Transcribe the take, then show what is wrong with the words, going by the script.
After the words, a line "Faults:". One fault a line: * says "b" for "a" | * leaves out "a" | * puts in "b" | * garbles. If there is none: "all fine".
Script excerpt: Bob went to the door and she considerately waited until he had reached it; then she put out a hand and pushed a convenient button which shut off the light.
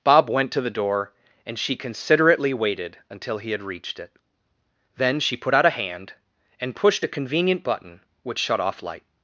Bob went to the door and she considerately waited until he had reached it; then she put out a hand and pushed a convenient button which shut off light.
Faults:
* leaves out "the"